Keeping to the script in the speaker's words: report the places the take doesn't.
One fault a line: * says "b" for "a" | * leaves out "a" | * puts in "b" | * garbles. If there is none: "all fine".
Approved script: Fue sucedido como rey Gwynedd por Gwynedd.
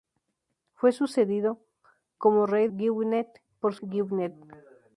all fine